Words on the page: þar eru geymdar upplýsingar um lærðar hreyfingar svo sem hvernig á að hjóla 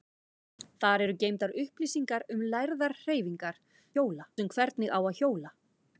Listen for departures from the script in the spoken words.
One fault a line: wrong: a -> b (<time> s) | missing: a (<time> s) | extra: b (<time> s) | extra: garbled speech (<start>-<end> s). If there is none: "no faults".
wrong: svo -> hjóla (4.0 s)